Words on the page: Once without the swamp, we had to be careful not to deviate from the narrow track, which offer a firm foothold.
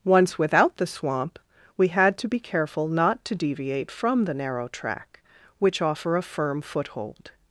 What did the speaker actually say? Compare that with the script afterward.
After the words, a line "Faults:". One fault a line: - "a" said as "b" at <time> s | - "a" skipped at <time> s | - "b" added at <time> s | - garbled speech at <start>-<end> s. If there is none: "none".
Once without the swamp, we had to be careful not to deviate from the narrow track, which offer a firm foothold.
Faults:
none